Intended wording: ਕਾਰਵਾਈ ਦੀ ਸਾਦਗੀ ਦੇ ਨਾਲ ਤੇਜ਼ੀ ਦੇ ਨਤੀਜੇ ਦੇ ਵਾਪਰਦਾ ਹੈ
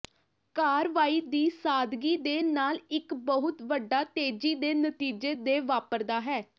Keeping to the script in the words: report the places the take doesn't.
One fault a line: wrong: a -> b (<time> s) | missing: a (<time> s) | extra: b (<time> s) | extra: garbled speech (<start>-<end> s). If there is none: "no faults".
extra: ਇੱਕ ਬਹੁਤ ਵੱਡਾ (2.9 s)